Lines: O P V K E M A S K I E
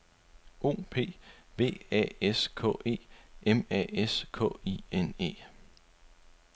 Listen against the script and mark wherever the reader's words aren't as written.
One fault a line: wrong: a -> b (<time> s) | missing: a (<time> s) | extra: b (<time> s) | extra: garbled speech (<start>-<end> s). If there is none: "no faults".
extra: A S (1.9 s)
extra: N (4.9 s)